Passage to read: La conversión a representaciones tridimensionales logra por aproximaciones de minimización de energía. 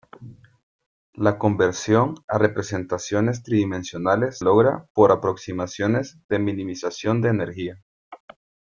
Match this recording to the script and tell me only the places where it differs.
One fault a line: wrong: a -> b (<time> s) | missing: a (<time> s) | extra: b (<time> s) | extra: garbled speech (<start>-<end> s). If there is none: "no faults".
no faults